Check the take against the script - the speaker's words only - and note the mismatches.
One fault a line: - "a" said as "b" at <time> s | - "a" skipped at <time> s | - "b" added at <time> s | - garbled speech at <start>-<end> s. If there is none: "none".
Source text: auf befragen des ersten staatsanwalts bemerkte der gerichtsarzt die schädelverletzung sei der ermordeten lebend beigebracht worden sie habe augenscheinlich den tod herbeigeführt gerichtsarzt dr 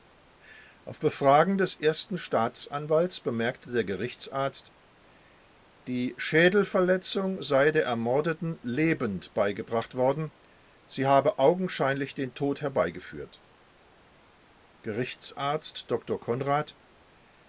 none